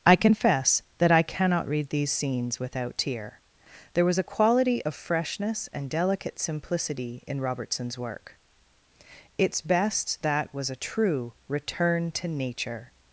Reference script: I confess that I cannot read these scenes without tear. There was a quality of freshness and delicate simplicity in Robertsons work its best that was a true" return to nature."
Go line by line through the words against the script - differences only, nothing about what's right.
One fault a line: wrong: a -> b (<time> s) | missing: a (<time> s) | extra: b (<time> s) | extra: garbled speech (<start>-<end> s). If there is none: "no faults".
no faults